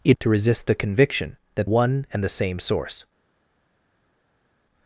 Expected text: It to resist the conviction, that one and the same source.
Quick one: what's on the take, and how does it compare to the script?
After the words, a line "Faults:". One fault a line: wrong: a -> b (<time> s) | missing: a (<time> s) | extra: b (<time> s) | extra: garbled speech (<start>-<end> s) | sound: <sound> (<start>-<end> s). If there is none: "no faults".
It to resist the conviction, that one and the same source.
Faults:
no faults